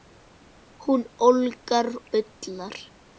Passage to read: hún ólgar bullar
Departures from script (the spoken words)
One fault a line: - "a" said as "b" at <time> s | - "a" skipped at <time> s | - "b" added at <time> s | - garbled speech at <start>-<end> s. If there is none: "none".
none